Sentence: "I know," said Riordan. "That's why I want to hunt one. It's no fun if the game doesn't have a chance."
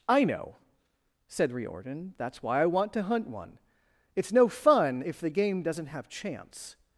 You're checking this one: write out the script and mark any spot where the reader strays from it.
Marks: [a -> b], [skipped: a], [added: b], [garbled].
"I know," said Riordan. "That's why I want to hunt one. It's no fun if the game doesn't have [skipped: a] chance."